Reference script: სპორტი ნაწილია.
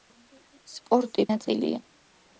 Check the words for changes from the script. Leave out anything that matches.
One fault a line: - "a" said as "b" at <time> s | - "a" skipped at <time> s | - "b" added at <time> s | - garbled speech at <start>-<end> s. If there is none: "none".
none